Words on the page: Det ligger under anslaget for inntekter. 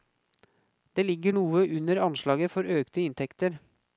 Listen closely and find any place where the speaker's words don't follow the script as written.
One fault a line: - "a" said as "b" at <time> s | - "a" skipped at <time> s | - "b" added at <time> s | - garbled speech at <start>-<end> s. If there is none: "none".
- "noe" added at 1.3 s
- "økte" added at 2.8 s